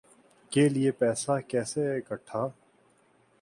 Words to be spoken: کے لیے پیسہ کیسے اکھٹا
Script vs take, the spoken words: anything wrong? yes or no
no